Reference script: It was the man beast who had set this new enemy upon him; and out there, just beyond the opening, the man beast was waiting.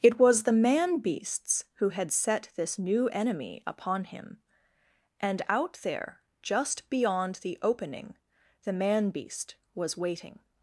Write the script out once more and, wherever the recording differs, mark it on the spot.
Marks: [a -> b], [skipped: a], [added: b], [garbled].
It was the man [beast -> beasts] who had set this new enemy upon him; and out there, just beyond the opening, the man beast was waiting.